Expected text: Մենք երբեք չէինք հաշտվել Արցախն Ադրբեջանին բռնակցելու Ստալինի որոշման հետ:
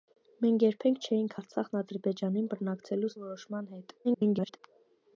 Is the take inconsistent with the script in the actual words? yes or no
yes